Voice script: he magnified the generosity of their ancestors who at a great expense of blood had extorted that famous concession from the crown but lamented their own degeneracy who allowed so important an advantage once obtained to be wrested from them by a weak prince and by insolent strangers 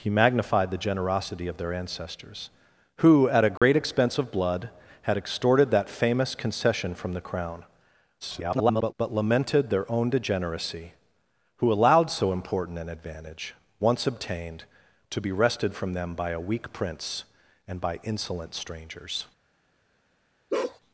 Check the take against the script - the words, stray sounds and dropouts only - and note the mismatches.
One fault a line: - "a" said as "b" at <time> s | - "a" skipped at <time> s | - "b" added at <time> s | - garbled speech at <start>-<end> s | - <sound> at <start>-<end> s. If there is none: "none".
- dropout at 3.6-3.6 s
- garbled speech at 8.2-8.9 s
- bark at 20.5-20.8 s